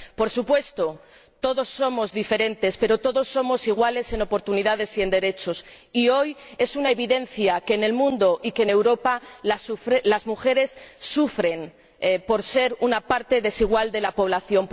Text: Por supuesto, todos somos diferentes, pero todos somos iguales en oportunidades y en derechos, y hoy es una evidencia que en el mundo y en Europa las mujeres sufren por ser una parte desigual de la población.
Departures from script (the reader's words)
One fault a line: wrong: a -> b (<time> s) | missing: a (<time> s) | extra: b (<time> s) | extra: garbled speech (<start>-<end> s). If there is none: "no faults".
no faults